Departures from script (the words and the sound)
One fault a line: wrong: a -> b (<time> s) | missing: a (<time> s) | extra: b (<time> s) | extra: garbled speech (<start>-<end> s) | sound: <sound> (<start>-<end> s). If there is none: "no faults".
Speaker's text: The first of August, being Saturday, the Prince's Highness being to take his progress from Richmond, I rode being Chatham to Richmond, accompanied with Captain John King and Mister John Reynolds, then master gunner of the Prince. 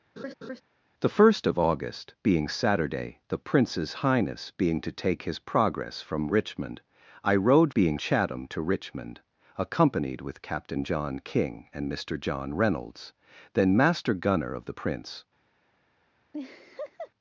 sound: laugh (0.2-0.6 s)
sound: laugh (16.3-17.1 s)